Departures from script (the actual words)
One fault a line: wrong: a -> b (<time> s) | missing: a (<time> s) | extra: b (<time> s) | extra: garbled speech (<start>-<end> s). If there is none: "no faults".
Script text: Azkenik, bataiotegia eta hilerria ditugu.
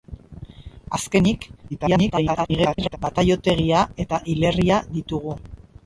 extra: garbled speech (1.7-3.0 s)